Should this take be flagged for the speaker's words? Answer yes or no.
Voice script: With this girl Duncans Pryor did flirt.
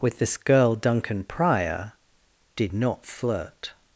yes